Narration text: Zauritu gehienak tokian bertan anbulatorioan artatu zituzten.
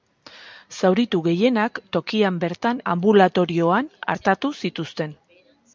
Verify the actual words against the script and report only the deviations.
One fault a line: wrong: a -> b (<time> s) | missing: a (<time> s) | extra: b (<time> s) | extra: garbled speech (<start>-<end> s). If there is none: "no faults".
no faults